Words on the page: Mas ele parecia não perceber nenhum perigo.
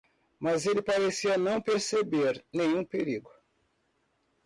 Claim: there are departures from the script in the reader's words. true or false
false